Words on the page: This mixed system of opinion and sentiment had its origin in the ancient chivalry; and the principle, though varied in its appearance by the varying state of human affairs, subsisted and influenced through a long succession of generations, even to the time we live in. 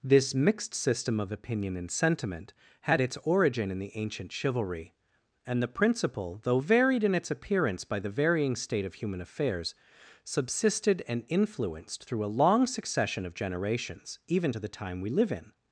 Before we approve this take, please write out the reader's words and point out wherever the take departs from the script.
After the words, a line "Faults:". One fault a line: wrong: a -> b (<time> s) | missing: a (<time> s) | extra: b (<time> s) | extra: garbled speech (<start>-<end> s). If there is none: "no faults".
This mixed system of opinion and sentiment had its origin in the ancient chivalry; and the principle, though varied in its appearance by the varying state of human affairs, subsisted and influenced through a long succession of generations, even to the time we live in.
Faults:
no faults